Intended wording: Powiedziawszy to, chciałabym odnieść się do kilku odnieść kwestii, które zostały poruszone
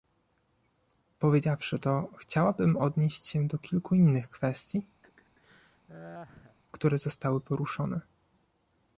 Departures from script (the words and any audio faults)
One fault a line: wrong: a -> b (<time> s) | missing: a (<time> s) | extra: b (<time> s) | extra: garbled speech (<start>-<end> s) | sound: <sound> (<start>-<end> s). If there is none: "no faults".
wrong: odnieść -> innych (3.9 s)
sound: laugh (5.0-6.6 s)